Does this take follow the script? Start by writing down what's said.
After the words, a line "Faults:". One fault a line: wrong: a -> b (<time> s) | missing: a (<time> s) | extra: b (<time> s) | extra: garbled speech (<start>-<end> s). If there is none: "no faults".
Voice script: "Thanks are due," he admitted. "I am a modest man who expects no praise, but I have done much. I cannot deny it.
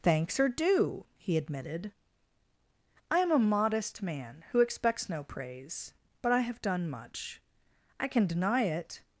"Thanks are due," he admitted. "I am a modest man who expects no praise, but I have done much. I can deny it.
Faults:
wrong: cannot -> can (8.1 s)